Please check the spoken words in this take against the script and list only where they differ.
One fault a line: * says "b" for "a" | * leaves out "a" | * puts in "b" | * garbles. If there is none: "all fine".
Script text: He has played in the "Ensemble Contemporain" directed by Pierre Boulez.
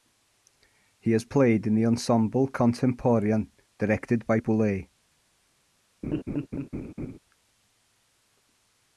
* leaves out "Pierre"